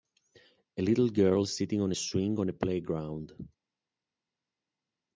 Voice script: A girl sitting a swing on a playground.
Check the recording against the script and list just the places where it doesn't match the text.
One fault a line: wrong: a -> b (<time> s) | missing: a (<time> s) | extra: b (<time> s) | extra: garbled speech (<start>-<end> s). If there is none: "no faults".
extra: little (0.8 s)
extra: on (1.8 s)